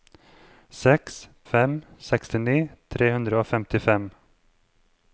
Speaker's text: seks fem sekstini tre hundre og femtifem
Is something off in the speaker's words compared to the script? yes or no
no